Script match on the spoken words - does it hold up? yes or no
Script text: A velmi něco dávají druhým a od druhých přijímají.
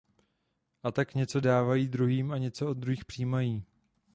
no